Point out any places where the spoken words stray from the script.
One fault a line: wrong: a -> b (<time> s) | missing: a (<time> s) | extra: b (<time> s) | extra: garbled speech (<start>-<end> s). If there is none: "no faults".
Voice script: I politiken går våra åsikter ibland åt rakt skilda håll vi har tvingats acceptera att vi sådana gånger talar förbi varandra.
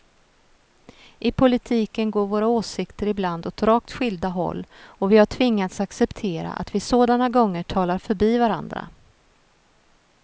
extra: och (4.8 s)